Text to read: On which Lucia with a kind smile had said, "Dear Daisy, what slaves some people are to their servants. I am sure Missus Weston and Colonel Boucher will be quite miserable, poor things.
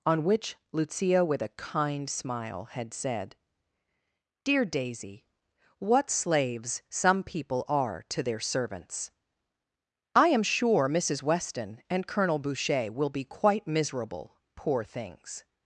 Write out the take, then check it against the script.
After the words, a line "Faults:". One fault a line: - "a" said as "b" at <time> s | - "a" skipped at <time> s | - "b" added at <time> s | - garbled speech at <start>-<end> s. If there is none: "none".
On which Lucia with a kind smile had said, "Dear Daisy, what slaves some people are to their servants. I am sure Missus Weston and Colonel Boucher will be quite miserable, poor things.
Faults:
none